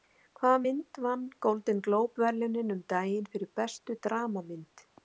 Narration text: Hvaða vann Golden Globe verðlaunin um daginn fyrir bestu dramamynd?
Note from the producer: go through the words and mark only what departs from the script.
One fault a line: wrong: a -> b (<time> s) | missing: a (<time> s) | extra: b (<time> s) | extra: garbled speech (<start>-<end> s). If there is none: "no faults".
extra: mynd (0.6 s)